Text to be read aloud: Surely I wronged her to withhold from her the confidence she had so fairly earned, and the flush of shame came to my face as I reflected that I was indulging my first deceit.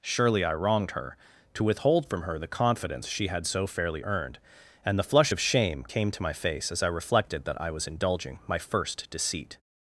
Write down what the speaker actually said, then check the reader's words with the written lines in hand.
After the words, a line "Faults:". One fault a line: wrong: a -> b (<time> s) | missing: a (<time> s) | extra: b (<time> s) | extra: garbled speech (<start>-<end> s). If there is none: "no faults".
Surely I wronged her to withhold from her the confidence she had so fairly earned, and the flush of shame came to my face as I reflected that I was indulging my first deceit.
Faults:
no faults